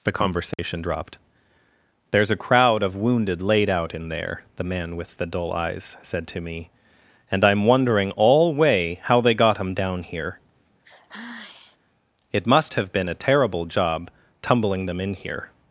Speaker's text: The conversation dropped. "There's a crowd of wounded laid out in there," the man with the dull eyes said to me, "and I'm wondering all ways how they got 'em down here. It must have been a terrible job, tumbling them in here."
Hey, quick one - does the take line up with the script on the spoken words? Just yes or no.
no